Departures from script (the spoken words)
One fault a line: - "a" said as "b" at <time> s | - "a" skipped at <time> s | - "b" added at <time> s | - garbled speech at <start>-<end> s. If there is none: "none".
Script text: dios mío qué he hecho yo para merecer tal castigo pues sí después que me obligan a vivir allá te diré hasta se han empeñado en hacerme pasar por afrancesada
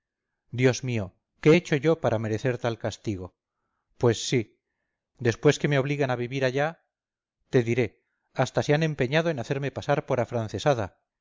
none